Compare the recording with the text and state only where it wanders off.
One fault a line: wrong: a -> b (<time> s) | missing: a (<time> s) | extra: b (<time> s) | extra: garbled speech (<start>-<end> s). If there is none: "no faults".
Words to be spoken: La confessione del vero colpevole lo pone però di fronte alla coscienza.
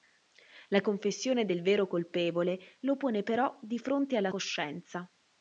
no faults